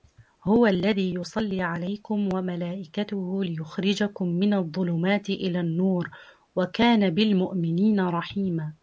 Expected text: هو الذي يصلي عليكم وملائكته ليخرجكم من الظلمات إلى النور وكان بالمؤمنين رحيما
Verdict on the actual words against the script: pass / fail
pass